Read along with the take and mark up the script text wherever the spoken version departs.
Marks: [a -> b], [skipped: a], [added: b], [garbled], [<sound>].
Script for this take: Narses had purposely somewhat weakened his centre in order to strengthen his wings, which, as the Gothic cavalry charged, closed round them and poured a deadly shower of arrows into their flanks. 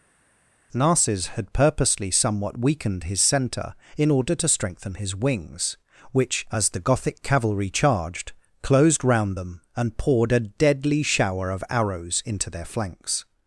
Narses had purposely somewhat weakened his centre in order to strengthen his wings, which, as the Gothic cavalry charged, closed round them and poured a deadly shower of arrows into their flanks.